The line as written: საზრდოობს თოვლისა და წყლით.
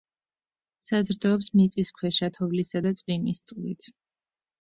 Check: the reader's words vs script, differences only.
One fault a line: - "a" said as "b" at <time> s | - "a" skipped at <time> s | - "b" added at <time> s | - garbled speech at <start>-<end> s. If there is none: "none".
- "მიწისქვეშა" added at 1.6 s
- "წვიმის" added at 3.0 s